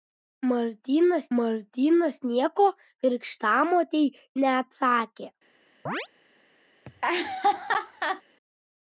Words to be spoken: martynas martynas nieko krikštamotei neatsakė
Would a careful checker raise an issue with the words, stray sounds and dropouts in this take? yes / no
yes